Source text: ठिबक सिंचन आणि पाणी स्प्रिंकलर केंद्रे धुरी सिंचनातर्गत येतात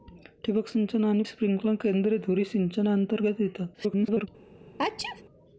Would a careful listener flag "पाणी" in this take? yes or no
yes